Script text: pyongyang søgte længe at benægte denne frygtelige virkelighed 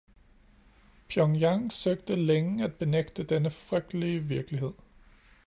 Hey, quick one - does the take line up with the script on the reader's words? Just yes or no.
yes